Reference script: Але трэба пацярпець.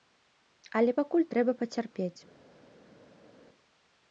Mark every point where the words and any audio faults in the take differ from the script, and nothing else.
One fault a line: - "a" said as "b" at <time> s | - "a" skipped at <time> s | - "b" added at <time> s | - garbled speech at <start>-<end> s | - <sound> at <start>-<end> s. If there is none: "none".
- "пакуль" added at 1.0 s